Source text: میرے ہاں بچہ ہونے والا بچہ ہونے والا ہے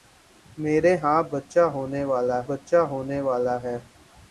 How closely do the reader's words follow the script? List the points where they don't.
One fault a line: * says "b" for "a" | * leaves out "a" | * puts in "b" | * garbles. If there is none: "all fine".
all fine